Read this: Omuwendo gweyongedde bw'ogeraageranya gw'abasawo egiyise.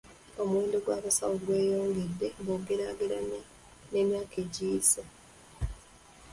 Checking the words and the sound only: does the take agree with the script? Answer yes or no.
no